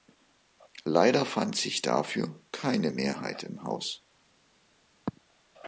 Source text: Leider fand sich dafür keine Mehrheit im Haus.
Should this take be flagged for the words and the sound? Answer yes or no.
no